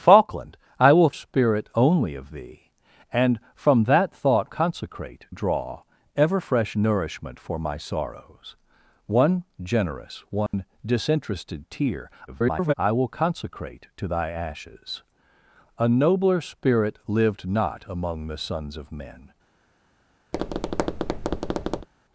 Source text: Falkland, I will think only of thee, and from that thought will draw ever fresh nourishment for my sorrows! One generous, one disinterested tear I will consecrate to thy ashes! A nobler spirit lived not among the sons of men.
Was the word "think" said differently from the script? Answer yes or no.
yes